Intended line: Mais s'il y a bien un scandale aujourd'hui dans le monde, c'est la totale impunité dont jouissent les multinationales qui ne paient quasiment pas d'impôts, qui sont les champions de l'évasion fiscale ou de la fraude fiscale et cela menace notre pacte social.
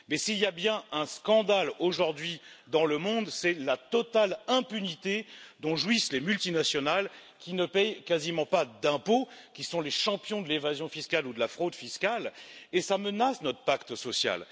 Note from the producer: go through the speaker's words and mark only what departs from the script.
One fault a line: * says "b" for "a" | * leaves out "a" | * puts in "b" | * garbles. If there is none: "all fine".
all fine